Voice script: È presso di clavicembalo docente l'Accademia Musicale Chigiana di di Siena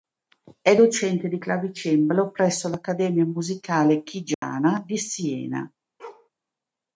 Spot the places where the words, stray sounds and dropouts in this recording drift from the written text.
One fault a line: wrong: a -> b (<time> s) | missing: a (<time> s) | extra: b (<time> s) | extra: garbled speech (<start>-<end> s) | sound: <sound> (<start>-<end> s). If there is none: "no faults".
wrong: presso -> docente (0.8 s)
wrong: docente -> presso (2.3 s)
sound: dropout (4.3-4.4 s)
missing: di (5.0 s)
sound: bark (6.0-6.3 s)